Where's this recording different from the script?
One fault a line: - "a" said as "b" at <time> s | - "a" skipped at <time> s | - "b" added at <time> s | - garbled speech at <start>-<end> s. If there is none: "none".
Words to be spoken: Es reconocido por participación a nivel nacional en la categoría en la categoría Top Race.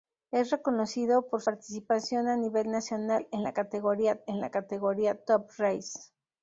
none